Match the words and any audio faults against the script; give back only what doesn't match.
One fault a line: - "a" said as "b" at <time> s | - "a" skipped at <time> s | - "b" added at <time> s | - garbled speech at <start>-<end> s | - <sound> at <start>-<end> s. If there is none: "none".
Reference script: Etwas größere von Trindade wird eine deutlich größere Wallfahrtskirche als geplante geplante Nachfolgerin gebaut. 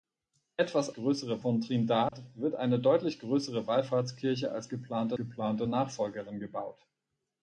- dropout at 2.1-2.1 s